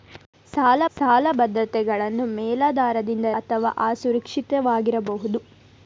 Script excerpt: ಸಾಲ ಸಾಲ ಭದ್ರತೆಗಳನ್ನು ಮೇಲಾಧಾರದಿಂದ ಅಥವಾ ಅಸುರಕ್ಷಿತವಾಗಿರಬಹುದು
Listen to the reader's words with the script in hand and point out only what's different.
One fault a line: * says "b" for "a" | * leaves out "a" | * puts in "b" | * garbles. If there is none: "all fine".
all fine